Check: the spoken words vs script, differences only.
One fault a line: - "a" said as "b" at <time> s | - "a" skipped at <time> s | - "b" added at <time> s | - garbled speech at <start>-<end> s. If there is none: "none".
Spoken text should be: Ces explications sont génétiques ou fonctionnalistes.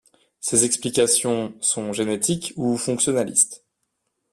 none